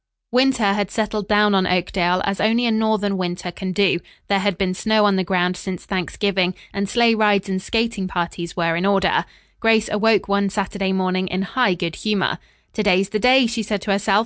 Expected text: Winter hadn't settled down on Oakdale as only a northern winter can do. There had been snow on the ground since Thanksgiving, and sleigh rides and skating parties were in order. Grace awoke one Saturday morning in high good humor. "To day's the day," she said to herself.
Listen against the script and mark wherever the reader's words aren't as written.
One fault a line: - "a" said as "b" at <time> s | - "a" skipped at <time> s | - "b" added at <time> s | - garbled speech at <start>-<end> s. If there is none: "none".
- "hadn't" said as "had" at 0.7 s